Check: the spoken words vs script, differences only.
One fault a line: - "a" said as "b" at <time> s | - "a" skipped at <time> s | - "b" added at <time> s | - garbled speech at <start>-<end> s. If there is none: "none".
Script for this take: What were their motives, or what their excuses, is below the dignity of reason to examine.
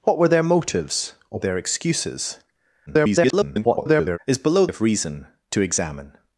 - "what" skipped at 1.4 s
- garbled speech at 2.9-4.2 s
- "the dignity" skipped at 4.7 s